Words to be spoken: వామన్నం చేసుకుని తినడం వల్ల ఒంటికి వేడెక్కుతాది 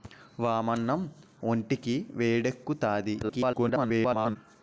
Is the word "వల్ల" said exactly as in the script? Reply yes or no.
no